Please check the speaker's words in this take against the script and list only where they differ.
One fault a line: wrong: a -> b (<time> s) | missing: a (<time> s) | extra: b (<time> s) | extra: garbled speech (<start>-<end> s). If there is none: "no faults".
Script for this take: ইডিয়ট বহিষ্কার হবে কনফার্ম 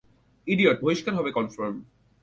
no faults